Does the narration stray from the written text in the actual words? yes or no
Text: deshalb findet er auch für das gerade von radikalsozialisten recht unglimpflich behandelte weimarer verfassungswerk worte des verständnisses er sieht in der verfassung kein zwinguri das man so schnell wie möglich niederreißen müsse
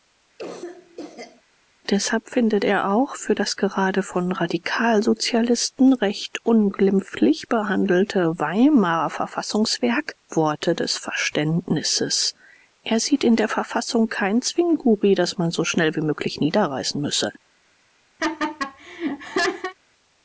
no